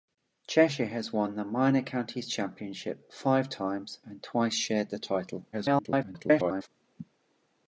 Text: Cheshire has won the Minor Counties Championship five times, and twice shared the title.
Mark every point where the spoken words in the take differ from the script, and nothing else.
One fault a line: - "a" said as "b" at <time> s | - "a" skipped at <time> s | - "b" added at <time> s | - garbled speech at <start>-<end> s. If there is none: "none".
- garbled speech at 5.5-6.7 s